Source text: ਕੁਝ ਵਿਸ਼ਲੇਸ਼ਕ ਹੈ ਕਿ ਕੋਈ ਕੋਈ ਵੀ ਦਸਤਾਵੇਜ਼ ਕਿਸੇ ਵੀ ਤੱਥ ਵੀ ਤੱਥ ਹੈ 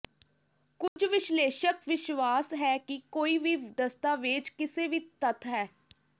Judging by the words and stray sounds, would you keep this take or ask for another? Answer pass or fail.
fail